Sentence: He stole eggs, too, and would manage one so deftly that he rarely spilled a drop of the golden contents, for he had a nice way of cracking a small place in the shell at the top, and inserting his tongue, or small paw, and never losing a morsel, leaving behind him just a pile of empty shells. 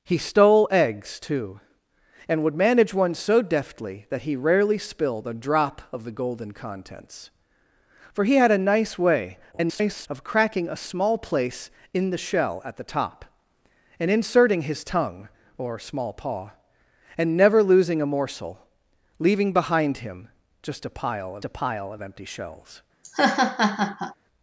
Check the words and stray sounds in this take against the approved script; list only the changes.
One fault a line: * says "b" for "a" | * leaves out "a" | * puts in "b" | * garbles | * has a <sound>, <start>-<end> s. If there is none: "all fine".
* garbles
* puts in "a pile of"
* has a laugh, 23.0-24.2 s